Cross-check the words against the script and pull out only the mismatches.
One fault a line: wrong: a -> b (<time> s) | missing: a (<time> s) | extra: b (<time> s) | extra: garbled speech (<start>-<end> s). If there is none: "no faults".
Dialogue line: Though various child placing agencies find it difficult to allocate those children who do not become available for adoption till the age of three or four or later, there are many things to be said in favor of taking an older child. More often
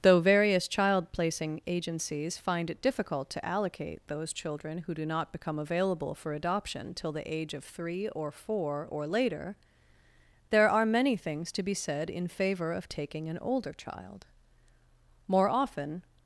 no faults